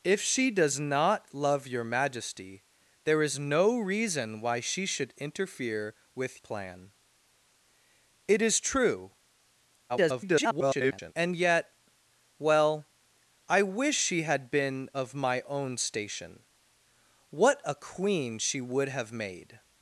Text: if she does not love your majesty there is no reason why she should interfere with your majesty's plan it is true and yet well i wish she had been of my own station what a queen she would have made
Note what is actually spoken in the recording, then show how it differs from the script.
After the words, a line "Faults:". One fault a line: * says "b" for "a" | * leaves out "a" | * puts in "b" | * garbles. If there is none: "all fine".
if she does not love your majesty there is no reason why she should interfere with plan it is true [garbled] and yet well i wish she had been of my own station what a queen she would have made
Faults:
* leaves out "your majesty's"
* garbles